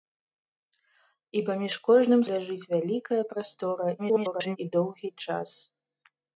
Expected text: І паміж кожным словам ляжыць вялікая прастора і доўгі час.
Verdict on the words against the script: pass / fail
fail